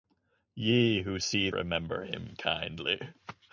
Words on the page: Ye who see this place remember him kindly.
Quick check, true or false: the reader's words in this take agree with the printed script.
false